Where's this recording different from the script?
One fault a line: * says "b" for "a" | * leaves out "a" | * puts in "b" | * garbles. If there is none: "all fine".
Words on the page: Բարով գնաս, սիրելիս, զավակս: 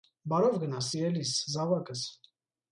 all fine